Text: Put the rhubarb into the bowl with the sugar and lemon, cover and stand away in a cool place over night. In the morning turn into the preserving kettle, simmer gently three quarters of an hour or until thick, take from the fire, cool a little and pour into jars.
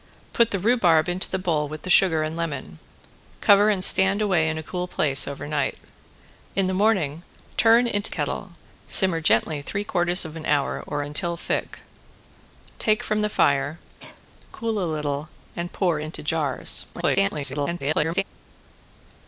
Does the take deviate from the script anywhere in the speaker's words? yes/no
yes